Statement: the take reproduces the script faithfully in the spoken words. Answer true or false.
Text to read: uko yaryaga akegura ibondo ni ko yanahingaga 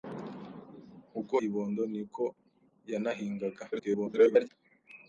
false